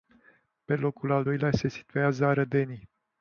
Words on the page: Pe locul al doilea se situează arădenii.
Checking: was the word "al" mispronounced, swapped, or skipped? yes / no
no